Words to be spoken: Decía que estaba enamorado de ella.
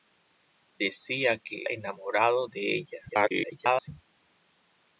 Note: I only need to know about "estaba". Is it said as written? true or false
false